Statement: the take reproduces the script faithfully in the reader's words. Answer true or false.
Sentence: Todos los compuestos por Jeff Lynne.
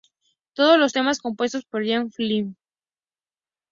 false